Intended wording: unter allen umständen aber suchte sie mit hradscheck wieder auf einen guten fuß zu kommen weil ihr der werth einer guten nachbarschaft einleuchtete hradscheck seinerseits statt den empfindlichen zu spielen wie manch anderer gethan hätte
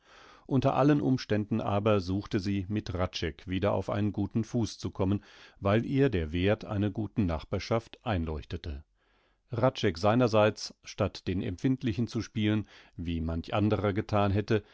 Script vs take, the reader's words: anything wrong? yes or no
no